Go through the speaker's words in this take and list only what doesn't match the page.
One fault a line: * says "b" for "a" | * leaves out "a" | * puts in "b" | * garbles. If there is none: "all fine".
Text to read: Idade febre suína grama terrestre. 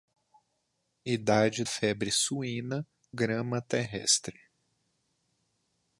all fine